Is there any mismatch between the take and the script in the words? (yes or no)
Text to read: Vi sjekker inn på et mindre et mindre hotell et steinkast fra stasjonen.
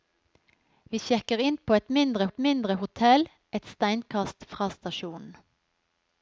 no